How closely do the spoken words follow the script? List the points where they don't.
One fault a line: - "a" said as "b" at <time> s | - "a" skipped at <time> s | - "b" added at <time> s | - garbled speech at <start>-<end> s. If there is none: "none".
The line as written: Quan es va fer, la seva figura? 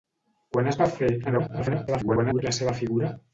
- garbled speech at 1.2-2.4 s